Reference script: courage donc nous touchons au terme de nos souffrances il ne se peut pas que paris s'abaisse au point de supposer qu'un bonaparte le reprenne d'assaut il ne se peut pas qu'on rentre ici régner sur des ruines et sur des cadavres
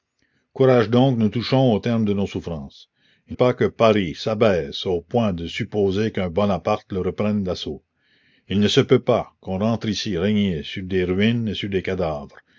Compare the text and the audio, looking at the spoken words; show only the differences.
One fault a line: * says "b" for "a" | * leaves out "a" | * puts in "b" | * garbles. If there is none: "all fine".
* leaves out "ne se peut"